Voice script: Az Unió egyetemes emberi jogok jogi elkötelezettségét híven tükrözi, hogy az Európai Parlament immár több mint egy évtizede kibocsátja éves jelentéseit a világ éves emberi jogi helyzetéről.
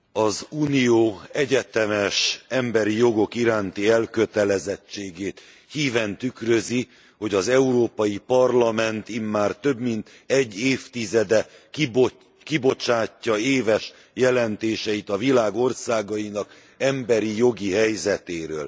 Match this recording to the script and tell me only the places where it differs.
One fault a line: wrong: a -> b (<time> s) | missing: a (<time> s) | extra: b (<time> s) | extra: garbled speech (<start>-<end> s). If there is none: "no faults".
wrong: jogi -> iránti (3.4 s)
wrong: éves -> országainak (15.6 s)